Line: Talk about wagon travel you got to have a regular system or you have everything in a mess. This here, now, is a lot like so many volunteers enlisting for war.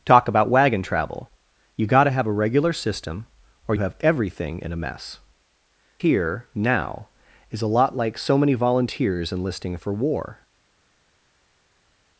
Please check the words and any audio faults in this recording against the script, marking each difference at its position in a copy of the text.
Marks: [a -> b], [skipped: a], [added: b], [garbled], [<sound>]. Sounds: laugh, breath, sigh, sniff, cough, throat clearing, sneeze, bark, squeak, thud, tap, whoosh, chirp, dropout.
Talk about wagon travel you got to have a regular system or [skipped: you] have everything in a mess. [skipped: This] here, now, is a lot like so many volunteers enlisting for war.